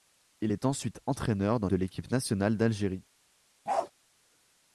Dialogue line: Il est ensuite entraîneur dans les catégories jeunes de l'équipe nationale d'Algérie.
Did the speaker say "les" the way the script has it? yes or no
no